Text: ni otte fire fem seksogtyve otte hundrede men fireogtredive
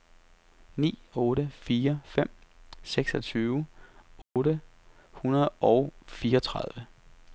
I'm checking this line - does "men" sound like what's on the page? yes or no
no